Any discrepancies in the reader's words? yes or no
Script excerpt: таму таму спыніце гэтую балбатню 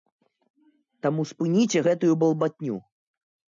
yes